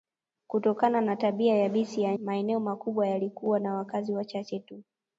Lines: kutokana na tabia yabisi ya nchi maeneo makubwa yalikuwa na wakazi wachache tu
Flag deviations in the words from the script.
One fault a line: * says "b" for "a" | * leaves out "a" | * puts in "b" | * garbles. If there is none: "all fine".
* leaves out "nchi"